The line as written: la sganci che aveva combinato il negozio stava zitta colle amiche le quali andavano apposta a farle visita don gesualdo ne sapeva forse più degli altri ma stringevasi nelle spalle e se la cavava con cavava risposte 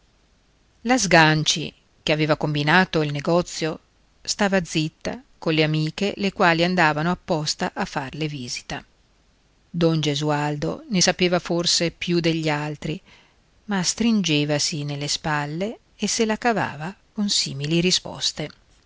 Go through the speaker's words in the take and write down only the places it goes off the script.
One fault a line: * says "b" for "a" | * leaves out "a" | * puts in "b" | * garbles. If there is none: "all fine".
* says "simili" for "cavava"